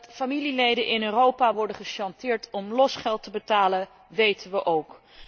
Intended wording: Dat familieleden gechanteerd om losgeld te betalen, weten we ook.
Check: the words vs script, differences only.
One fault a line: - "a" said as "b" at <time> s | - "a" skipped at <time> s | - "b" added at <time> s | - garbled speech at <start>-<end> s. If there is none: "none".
- "in Europa worden" added at 0.8 s